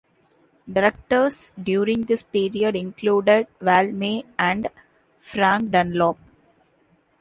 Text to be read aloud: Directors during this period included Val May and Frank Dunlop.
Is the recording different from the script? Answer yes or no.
no